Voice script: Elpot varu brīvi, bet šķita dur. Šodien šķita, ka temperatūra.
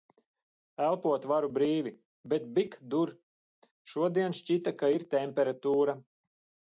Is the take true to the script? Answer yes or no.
no